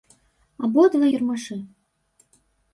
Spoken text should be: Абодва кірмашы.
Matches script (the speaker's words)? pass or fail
pass